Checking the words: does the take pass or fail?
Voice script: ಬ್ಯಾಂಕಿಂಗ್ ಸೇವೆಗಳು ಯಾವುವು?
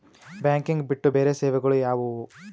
fail